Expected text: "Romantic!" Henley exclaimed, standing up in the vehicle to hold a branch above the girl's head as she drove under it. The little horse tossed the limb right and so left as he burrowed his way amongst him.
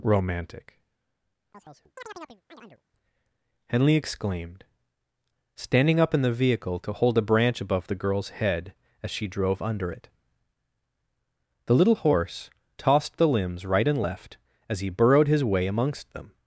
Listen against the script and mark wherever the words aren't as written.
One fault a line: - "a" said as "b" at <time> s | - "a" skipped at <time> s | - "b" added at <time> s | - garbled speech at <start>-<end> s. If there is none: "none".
- "limb" said as "limbs" at 13.3 s
- "so" skipped at 14.0 s
- "him" said as "them" at 16.1 s